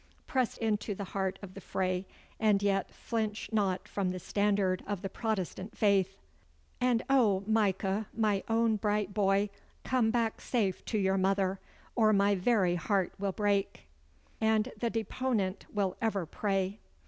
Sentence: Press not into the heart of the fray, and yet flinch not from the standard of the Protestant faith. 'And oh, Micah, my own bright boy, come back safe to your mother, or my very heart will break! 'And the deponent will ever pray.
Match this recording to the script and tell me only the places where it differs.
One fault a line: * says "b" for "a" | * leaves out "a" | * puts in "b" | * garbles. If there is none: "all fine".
* leaves out "not"